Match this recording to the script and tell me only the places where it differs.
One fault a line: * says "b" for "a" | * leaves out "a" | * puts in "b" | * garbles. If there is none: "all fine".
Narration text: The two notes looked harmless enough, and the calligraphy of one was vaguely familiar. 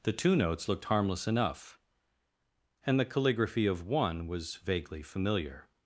all fine